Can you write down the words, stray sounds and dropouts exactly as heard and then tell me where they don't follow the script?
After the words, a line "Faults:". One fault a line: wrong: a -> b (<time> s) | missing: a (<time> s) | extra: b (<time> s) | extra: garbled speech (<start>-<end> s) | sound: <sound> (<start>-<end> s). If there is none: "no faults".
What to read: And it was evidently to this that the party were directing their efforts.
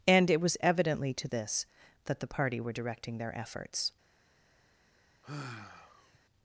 And it was evidently to this that the party were directing their efforts.
Faults:
sound: sigh (5.2-6.2 s)